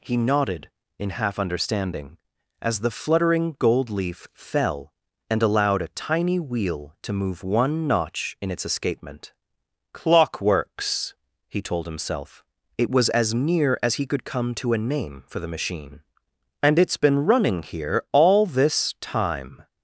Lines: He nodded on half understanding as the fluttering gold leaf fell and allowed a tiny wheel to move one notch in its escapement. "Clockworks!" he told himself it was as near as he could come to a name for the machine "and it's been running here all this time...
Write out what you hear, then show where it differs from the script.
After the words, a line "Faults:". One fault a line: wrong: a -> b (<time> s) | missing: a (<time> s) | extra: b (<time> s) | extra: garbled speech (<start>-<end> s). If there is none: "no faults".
He nodded in half understanding as the fluttering gold leaf fell and allowed a tiny wheel to move one notch in its escapement. "Clockworks!" he told himself it was as near as he could come to a name for the machine "and it's been running here all this time...
Faults:
wrong: on -> in (1.0 s)